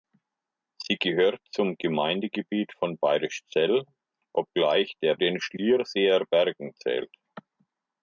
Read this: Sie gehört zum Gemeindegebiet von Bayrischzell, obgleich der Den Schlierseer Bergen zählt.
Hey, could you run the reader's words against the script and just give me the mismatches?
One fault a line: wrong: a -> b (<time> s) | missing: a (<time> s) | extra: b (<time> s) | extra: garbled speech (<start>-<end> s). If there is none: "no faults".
no faults